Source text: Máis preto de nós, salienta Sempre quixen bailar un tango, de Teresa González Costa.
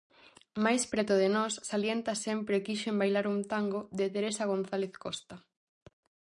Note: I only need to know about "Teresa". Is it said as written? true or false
true